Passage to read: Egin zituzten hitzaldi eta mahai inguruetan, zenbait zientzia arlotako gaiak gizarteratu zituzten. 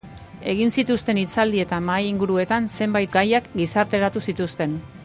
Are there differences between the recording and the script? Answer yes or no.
yes